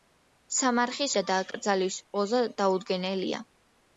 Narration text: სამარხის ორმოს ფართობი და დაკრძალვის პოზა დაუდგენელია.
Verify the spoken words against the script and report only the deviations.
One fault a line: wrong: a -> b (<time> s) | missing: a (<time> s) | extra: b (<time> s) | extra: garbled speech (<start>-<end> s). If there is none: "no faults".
missing: ორმოს ფართობი (1.1 s)